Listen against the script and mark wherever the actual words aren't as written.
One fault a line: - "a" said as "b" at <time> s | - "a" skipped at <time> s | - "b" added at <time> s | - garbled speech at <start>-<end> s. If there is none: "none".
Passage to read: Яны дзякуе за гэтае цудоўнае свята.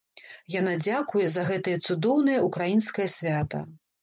- "Яны" said as "Яна" at 0.5 s
- "ўкраінскае" added at 2.5 s